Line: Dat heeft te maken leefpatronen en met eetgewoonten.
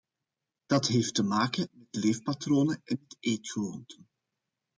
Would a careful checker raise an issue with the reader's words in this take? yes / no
yes